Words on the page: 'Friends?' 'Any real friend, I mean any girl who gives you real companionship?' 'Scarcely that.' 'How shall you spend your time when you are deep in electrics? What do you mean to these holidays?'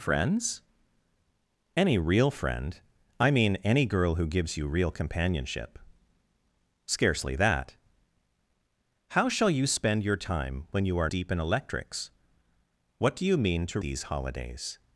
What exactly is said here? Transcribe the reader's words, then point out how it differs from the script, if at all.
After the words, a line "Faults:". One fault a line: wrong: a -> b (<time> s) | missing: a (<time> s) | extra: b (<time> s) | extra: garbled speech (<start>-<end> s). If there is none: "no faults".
'Friends?' 'Any real friend, I mean any girl who gives you real companionship?' 'Scarcely that.' 'How shall you spend your time when you are deep in electrics? What do you mean to these holidays?'
Faults:
no faults